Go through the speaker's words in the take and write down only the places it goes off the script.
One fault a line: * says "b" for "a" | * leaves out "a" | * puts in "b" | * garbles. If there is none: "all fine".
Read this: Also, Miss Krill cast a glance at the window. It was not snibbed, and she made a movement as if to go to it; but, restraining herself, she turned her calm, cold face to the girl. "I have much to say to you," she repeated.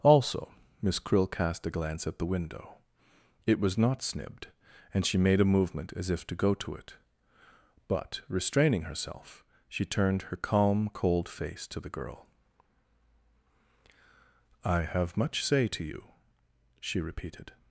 * leaves out "to"